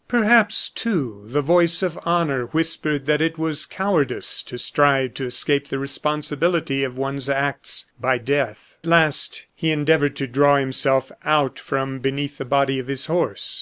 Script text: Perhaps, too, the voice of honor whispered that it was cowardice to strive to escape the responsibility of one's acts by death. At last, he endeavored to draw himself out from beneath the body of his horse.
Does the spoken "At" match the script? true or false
false